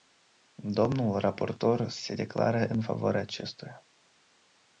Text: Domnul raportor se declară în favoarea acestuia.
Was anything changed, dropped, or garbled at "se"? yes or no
no